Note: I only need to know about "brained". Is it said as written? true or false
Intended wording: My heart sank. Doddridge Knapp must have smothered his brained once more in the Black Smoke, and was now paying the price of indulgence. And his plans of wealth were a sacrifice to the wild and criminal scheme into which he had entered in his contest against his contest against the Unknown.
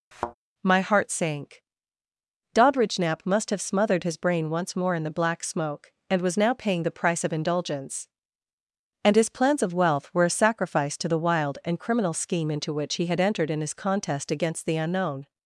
false